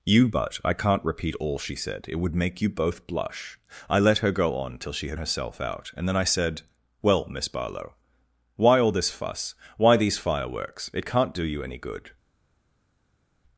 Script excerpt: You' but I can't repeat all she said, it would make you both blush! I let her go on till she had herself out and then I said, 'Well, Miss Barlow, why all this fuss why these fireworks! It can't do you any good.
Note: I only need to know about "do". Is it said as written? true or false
true